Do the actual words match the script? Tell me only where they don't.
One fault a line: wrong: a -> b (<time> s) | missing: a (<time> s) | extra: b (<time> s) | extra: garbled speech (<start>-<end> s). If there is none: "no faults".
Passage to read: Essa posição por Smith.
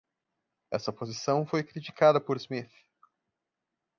extra: foi criticada (1.4 s)